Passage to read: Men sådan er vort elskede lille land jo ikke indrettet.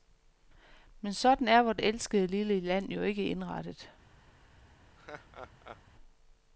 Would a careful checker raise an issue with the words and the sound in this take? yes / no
yes